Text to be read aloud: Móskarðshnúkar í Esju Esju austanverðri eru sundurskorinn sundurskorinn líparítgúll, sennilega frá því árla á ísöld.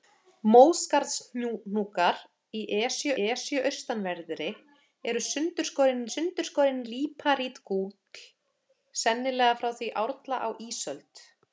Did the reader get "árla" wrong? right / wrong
right